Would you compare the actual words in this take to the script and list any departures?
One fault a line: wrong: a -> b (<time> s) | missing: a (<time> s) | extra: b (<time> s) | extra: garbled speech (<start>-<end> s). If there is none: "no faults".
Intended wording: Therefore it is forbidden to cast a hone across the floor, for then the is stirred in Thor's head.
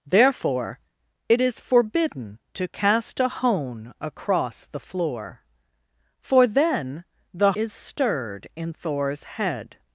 no faults